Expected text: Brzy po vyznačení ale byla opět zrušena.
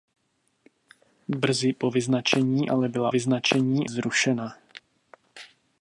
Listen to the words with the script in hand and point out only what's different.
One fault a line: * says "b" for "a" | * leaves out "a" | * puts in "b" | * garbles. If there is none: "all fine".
* says "vyznačení" for "opět"